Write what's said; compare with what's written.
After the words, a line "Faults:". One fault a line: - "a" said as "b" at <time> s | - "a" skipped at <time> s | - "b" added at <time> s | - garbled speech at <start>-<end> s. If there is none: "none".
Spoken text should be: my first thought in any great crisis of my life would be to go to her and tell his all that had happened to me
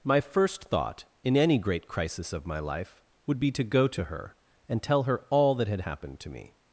my first thought in any great crisis of my life would be to go to her and tell her all that had happened to me
Faults:
- "his" said as "her" at 5.0 s